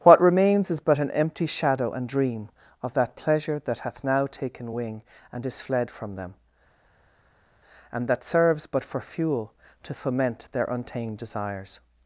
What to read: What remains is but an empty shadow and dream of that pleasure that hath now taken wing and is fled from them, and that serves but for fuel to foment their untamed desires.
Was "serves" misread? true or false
false